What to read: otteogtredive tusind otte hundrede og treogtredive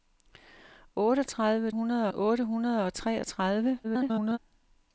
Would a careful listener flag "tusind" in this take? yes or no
yes